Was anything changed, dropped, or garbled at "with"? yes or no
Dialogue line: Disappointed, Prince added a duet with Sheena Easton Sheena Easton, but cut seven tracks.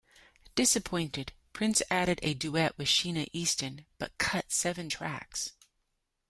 no